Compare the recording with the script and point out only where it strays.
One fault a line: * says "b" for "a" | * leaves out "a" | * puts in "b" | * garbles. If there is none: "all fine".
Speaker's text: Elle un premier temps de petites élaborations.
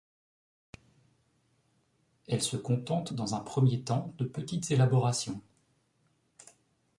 * puts in "se contente dans"